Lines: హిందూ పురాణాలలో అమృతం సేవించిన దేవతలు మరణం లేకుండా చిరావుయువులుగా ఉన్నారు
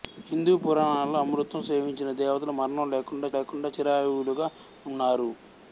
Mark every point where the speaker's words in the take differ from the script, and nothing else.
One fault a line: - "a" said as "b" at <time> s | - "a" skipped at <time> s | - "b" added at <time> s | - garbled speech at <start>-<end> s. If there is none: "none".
- "లేకుండా" added at 3.3 s